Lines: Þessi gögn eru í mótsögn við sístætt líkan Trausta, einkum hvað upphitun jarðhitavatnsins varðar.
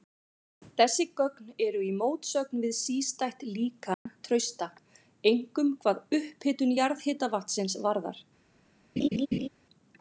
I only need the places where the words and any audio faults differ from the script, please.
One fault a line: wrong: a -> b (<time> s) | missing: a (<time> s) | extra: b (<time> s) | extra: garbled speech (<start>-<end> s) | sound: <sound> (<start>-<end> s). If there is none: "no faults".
sound: dropout (3.9-4.1 s)
sound: laugh (9.0-9.5 s)